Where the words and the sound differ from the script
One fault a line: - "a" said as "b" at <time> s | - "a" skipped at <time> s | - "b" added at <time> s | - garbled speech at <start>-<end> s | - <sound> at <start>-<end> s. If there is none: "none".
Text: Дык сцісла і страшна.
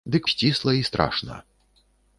none